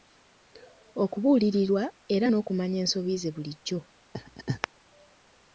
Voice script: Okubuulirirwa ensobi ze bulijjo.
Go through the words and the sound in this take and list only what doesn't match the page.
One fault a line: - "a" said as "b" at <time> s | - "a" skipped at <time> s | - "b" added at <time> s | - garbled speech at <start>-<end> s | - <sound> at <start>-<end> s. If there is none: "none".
- "era n'okumanya" added at 2.1 s
- laugh at 4.1-4.7 s